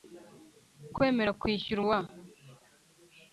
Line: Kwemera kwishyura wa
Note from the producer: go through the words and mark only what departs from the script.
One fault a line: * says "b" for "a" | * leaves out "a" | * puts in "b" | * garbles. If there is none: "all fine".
all fine